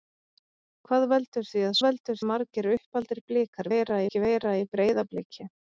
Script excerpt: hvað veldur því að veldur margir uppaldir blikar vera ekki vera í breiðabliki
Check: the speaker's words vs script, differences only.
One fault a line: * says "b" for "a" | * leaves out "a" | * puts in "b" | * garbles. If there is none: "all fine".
all fine